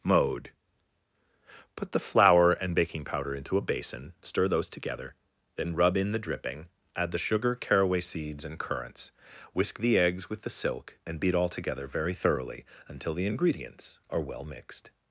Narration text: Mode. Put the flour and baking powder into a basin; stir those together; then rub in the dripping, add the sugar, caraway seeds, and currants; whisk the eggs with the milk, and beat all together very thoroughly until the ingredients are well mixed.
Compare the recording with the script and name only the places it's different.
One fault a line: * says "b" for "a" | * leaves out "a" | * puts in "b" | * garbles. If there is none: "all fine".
* says "silk" for "milk"